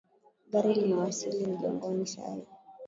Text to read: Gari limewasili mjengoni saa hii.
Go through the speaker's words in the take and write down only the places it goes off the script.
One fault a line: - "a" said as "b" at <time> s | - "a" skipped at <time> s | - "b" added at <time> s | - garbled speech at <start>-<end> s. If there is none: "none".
none